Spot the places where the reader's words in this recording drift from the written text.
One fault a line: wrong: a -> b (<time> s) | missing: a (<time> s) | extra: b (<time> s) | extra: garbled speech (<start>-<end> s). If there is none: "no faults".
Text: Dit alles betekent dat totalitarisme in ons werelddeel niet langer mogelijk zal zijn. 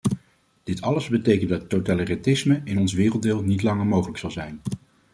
no faults